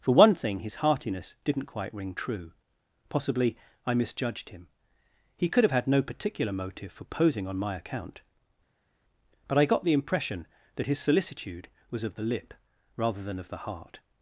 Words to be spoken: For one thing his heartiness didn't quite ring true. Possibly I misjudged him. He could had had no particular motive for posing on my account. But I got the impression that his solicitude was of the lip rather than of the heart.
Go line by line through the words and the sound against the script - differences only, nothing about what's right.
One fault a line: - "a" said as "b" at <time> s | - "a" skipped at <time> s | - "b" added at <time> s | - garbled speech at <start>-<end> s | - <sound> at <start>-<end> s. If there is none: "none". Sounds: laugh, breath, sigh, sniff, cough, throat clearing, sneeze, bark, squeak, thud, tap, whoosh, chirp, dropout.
- "had" said as "have" at 5.6 s